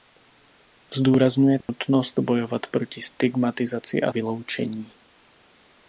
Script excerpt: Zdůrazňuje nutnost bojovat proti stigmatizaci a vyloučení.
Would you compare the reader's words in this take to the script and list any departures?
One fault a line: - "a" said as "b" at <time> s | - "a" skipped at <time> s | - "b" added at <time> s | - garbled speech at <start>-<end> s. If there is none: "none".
none